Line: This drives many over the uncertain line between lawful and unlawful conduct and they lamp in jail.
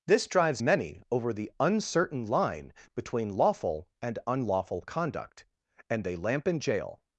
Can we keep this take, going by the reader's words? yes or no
yes